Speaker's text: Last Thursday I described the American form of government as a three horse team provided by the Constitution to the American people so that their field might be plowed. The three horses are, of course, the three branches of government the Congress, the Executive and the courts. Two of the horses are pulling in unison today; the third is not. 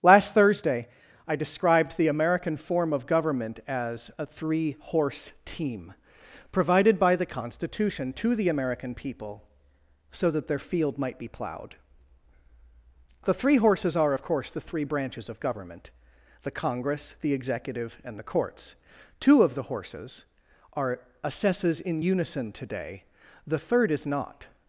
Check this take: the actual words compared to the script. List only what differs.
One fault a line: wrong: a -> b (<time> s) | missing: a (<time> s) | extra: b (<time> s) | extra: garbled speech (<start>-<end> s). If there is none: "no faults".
wrong: pulling -> assesses (21.2 s)